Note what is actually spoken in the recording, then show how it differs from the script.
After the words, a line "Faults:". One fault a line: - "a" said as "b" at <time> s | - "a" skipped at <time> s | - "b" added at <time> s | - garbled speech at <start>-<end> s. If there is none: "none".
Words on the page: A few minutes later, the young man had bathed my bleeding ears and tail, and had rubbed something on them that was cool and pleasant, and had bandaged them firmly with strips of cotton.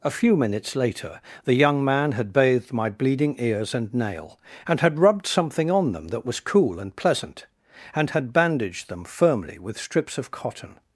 A few minutes later, the young man had bathed my bleeding ears and nail, and had rubbed something on them that was cool and pleasant, and had bandaged them firmly with strips of cotton.
Faults:
- "tail" said as "nail" at 3.9 s